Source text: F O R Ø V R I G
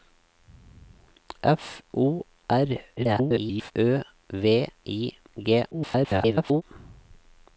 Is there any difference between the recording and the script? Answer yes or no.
yes